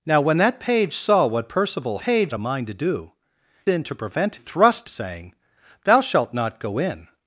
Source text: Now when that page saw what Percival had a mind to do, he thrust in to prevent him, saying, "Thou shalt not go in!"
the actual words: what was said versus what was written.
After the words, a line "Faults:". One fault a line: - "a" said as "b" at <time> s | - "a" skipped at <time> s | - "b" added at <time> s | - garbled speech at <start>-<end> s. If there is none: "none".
Now when that page saw what Percival page a mind to do, in to prevent thrust, saying, "Thou shalt not go in!"
Faults:
- "had" said as "page" at 2.0 s
- "he thrust" skipped at 3.1 s
- "him" said as "thrust" at 4.3 s